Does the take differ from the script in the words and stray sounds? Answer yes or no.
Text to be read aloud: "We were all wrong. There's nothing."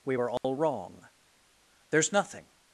yes